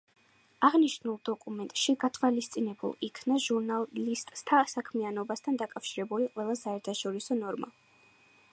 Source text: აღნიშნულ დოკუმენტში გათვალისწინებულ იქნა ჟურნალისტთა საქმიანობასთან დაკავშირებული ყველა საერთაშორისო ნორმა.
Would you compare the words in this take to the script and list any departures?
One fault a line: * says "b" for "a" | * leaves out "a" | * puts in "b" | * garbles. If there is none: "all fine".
all fine